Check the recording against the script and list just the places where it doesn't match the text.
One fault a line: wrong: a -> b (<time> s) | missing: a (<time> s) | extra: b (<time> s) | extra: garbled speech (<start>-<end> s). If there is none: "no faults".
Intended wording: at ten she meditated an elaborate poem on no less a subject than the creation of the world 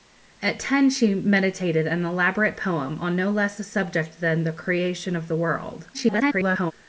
extra: garbled speech (5.9-6.7 s)